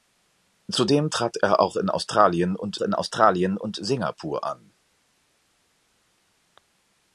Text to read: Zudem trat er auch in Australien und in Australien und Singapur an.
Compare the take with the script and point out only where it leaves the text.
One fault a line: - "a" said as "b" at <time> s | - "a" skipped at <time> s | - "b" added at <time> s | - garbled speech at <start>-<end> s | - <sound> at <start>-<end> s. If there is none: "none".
none